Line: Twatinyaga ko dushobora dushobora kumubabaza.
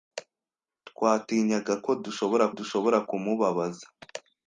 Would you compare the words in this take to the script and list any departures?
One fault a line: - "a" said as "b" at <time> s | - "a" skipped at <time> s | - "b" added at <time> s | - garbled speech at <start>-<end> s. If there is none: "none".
none